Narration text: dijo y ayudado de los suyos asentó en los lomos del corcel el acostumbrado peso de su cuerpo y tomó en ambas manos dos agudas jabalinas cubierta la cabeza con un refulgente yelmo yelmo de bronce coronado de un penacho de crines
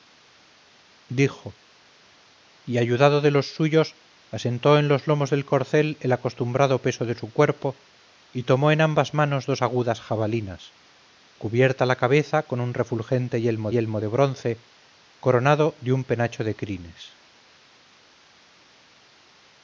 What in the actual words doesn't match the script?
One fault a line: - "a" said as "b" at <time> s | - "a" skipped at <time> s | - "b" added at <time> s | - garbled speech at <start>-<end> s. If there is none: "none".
none